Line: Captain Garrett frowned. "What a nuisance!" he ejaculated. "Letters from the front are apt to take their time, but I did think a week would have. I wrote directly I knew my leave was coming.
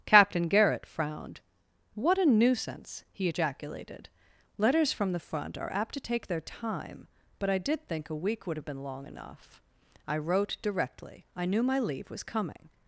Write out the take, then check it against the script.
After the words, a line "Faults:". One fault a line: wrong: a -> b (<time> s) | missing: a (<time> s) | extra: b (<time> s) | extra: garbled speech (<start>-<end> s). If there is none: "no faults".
Captain Garrett frowned. "What a nuisance!" he ejaculated. "Letters from the front are apt to take their time, but I did think a week would have been long enough. I wrote directly I knew my leave was coming.
Faults:
extra: been long enough (8.6 s)